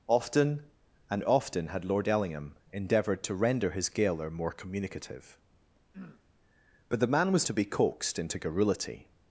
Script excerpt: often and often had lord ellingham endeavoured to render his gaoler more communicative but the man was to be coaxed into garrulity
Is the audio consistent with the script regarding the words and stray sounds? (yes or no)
no